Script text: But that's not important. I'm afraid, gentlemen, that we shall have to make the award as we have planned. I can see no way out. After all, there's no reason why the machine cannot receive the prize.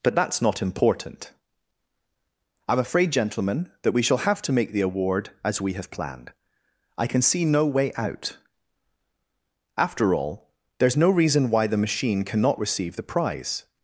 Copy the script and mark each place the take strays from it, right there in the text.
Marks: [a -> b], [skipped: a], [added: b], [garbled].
But that's not important. I'm afraid, gentlemen, that we shall have to make the award as we have planned. I can see no way out. After all, there's no reason why the machine cannot receive the prize.